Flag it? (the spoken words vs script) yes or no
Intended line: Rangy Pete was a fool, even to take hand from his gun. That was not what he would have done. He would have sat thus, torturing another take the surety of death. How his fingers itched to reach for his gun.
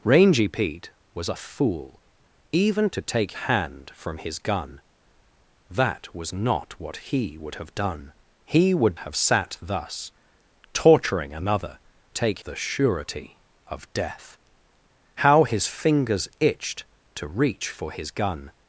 no